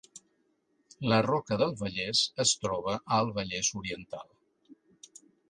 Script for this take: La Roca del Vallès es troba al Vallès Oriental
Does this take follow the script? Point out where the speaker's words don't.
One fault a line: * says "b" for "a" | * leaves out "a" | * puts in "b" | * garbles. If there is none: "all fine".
all fine